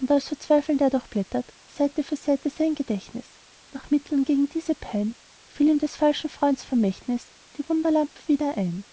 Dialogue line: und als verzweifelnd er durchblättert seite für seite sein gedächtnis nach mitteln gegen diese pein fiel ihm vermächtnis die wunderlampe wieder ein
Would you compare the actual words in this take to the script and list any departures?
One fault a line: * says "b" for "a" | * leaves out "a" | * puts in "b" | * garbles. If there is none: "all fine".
* puts in "des falschen freunds"